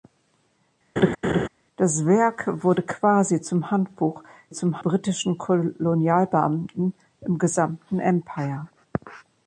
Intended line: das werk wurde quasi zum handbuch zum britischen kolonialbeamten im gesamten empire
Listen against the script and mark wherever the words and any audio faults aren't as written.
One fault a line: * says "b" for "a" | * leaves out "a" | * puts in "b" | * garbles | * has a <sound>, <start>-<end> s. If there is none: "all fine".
* has a laugh, 1.0-1.5 s